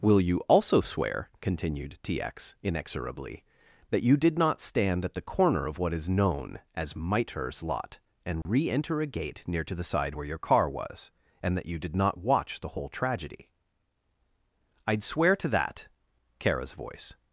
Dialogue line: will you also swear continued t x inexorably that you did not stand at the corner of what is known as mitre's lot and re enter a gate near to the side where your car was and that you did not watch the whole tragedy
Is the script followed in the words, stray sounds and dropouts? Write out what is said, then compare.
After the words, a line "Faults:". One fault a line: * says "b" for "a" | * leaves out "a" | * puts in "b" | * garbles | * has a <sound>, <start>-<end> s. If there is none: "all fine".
will you also swear continued t x inexorably that you did not stand at the corner of what is known as mitre's lot and re enter a gate near to the side where your car was and that you did not watch the whole tragedy i'd swear to that kara's voice
Faults:
* has a dropout, 8.4-8.5 s
* puts in "i'd swear to that kara's voice"